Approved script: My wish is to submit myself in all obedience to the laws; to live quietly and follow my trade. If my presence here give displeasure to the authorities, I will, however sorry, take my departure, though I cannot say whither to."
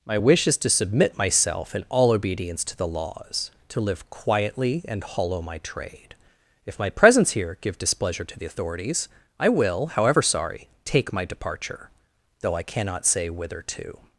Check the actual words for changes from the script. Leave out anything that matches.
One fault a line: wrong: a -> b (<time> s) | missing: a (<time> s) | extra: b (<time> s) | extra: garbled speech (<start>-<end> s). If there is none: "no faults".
wrong: follow -> hollow (5.0 s)